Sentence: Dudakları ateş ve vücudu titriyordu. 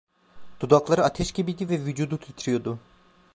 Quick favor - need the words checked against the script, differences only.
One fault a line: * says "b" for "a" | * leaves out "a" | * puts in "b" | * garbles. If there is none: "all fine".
* puts in "gibiydi"